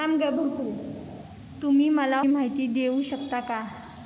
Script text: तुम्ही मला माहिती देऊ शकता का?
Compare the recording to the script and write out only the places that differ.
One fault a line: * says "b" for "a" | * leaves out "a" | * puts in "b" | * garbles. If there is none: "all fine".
all fine